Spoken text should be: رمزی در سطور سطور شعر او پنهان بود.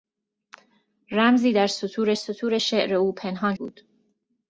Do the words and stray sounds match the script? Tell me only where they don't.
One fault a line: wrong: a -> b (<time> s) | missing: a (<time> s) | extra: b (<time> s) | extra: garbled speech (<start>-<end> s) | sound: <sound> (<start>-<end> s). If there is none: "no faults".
no faults